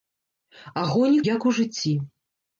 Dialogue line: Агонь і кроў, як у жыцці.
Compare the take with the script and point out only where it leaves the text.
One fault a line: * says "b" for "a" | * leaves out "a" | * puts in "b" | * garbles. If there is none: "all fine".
* leaves out "кроў"